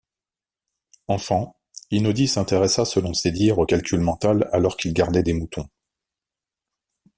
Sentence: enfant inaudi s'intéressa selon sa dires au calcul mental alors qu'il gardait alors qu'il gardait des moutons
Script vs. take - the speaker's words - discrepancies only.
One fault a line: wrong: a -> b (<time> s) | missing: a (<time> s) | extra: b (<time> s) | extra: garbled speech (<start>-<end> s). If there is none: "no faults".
wrong: sa -> ses (3.1 s)
missing: alors qu'il gardait (5.2 s)